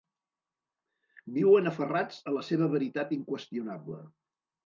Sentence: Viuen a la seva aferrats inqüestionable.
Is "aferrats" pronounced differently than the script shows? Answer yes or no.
yes